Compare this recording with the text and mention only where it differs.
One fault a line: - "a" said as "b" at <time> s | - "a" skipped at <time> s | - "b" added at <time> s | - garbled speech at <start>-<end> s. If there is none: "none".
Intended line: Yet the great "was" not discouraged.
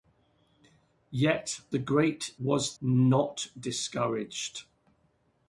none